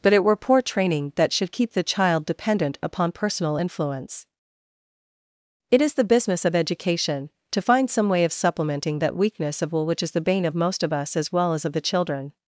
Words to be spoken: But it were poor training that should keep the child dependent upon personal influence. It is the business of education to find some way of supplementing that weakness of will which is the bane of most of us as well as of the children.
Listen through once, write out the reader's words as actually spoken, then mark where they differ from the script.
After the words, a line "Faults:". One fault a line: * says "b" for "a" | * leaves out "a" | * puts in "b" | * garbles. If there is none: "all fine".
But it were poor training that should keep the child dependent upon personal influence. It is the business of education to find some way of supplementing that weakness of will which is the bane of most of us as well as of the children.
Faults:
all fine